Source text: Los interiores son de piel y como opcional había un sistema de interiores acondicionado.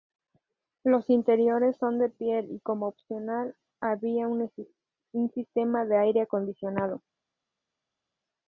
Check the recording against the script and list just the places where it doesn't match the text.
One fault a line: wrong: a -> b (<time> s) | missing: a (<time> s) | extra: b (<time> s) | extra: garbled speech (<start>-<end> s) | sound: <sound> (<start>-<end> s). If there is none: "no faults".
wrong: interiores -> aire (6.0 s)